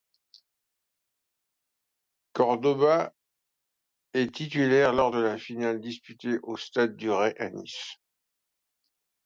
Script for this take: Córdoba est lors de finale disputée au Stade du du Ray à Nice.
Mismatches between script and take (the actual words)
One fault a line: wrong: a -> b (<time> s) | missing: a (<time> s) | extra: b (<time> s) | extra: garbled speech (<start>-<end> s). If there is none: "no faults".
extra: titulaire (4.3 s)
extra: la (5.2 s)
missing: du (7.1 s)